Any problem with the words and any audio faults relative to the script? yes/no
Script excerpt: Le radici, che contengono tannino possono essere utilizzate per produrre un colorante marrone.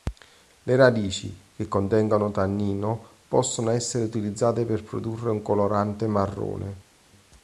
no